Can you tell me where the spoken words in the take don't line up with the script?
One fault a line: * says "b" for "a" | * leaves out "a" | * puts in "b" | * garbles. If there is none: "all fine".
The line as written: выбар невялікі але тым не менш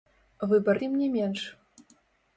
* leaves out "невялікі але"